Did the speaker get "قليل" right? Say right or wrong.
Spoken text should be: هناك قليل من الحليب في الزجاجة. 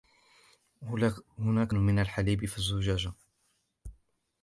wrong